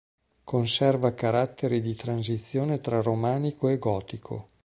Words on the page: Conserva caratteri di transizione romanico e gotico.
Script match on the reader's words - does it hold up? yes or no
no